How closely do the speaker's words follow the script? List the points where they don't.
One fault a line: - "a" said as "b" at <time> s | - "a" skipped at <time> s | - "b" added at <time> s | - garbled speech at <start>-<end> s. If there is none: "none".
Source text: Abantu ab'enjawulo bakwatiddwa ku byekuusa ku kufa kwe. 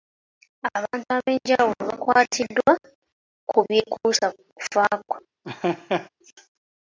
none